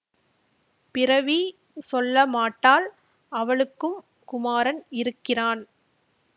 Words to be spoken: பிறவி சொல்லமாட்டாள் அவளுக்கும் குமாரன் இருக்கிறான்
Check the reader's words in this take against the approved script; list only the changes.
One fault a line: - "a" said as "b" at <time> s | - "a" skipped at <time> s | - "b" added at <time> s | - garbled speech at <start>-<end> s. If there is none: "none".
none